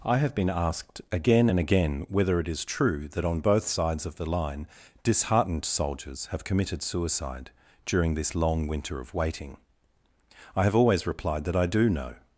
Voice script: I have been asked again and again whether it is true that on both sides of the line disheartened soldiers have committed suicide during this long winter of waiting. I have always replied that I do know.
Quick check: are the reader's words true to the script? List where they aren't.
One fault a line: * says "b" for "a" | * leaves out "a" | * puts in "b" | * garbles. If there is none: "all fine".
all fine